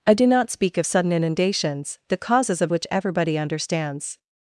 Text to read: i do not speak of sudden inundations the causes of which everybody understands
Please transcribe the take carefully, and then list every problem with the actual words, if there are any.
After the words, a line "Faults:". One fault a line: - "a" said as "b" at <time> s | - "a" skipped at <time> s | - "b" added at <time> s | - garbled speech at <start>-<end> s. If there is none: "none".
i do not speak of sudden inundations the causes of which everybody understands
Faults:
none